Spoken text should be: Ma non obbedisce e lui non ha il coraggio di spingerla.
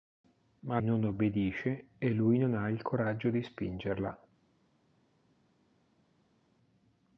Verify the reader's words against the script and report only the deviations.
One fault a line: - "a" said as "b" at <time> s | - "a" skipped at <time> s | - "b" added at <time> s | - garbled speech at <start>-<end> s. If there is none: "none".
none